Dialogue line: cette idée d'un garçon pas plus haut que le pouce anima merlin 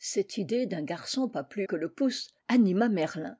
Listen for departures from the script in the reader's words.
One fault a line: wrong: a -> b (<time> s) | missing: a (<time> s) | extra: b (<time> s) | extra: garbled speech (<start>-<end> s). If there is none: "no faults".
missing: haut (1.7 s)